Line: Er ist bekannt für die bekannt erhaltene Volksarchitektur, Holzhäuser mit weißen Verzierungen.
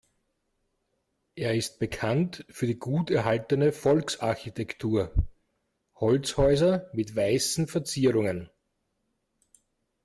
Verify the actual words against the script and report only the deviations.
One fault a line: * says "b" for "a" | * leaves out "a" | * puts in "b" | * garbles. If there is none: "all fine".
* says "gut" for "bekannt"